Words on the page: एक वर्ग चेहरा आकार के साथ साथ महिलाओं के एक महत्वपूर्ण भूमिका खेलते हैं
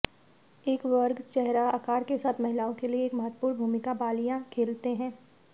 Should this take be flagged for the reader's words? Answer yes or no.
yes